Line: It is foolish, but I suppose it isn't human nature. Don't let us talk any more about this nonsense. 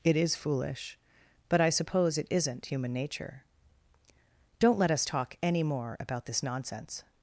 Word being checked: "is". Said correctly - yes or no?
yes